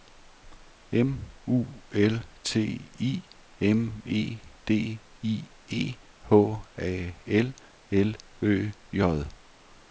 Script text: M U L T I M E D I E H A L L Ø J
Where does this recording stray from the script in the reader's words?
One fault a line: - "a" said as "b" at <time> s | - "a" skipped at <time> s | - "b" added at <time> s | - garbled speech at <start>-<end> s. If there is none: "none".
none